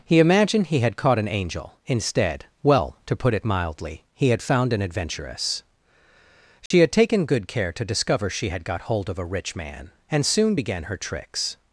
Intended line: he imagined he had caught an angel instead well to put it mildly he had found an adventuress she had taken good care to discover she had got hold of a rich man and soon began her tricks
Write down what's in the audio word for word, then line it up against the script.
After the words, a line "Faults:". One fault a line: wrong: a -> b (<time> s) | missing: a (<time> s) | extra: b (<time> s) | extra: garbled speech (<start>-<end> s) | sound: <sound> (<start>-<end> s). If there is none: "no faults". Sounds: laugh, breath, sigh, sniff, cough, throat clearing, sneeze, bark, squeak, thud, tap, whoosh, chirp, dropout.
he imagined he had caught an angel instead well to put it mildly he had found an adventuress she had taken good care to discover she had got hold of a rich man and soon began her tricks
Faults:
sound: dropout (6.7-6.7 s)